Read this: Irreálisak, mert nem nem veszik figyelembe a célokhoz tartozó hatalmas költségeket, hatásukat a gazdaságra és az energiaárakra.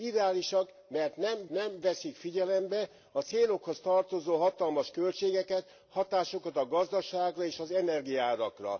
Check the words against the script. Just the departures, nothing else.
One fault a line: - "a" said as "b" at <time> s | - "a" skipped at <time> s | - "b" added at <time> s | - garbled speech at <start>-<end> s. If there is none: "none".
none